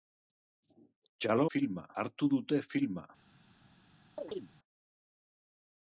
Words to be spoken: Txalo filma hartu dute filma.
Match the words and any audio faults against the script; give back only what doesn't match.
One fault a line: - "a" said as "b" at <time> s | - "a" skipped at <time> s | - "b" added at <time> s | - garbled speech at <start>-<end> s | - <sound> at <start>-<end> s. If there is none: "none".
- chirp at 4.2-4.5 s